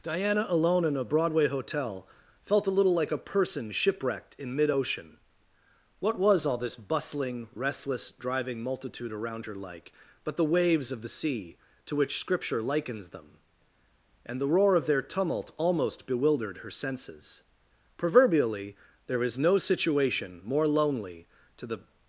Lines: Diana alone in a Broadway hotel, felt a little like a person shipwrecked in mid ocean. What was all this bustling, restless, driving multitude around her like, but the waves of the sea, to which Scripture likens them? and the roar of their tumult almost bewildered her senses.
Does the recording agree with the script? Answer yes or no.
no